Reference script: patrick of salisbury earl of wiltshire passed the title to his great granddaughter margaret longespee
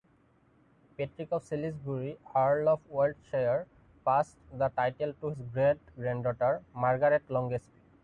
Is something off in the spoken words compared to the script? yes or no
no